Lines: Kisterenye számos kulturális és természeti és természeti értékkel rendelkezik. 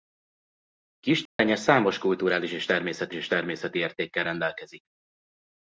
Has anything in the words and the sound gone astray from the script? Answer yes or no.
yes